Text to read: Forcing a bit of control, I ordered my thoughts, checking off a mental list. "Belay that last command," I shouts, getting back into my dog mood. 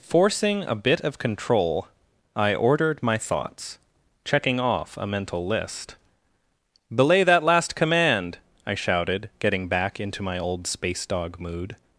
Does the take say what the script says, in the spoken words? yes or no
no